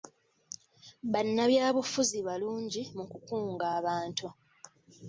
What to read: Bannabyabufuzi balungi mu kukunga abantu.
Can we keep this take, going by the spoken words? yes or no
yes